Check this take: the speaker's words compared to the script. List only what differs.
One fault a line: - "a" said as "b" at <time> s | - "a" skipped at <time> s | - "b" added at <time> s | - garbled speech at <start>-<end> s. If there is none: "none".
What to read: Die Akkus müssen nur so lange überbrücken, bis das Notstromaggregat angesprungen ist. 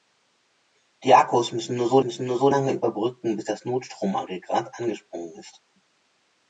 - "müssen nur so" added at 2.0 s